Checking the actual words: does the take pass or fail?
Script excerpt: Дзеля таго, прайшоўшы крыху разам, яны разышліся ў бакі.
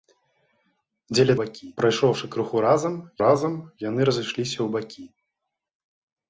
fail